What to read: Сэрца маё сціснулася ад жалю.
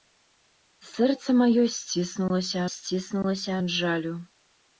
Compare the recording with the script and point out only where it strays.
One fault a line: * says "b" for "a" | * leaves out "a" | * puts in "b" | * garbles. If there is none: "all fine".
* puts in "сціснулася"